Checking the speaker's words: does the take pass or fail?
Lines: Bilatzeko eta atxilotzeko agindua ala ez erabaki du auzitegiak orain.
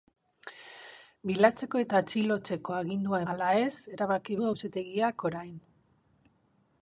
pass